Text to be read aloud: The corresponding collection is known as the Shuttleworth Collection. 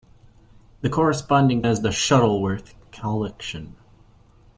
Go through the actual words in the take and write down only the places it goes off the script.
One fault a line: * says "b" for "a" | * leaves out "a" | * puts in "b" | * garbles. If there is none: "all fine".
* leaves out "collection is known"